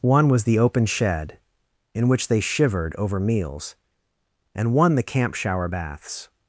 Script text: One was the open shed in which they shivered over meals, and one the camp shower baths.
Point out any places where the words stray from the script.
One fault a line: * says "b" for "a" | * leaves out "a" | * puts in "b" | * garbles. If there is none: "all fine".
all fine